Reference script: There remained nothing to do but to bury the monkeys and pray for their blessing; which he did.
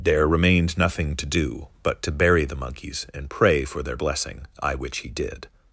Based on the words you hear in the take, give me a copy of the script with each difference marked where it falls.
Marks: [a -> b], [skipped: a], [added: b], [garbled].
There remained nothing to do but to bury the monkeys and pray for their blessing; [added: I] which he did.